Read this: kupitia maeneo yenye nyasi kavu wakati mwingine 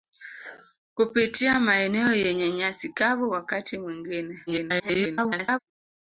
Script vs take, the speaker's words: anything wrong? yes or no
yes